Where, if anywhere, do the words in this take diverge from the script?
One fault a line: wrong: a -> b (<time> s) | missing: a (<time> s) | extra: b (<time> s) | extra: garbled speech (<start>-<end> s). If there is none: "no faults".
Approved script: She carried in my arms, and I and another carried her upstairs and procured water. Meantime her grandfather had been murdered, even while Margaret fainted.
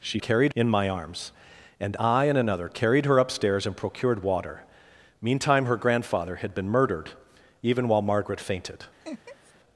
no faults